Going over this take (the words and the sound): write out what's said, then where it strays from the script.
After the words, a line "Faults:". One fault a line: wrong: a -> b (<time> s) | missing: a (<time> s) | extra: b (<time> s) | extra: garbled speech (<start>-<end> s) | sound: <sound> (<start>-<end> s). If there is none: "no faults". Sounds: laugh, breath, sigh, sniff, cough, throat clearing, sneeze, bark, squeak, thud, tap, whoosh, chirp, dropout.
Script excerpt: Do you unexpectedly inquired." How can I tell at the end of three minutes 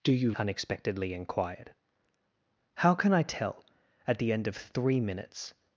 Do you unexpectedly inquired." How can I tell at the end of three minutes
Faults:
no faults